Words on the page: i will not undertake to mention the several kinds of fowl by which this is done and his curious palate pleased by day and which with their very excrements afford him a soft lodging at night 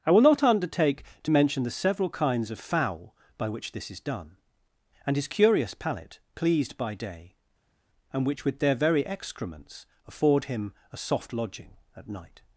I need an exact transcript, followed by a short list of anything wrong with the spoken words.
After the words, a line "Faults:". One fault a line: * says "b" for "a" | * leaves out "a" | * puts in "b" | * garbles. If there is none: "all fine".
i will not undertake to mention the several kinds of fowl by which this is done and his curious palate pleased by day and which with their very excrements afford him a soft lodging at night
Faults:
all fine